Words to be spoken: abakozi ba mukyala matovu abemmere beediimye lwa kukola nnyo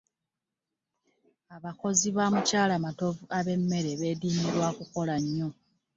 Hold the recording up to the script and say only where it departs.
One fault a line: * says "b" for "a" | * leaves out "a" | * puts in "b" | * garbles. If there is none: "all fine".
all fine